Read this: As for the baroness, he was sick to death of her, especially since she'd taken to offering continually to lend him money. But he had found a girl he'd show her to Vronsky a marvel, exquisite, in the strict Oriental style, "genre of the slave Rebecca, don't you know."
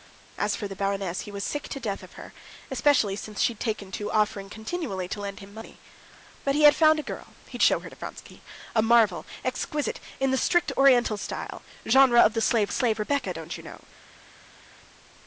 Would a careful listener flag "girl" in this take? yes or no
no